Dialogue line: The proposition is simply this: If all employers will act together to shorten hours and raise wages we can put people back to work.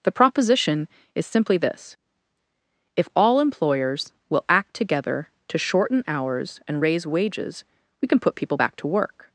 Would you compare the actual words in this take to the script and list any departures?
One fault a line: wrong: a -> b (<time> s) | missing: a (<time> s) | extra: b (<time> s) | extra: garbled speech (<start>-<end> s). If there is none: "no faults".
no faults